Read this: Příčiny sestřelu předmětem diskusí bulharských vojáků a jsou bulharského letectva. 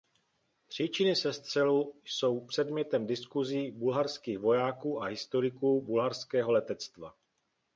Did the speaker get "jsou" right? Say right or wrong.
wrong